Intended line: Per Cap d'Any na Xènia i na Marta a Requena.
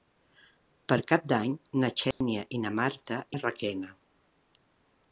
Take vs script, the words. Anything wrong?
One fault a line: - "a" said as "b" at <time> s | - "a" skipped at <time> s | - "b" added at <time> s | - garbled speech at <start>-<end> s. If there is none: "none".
none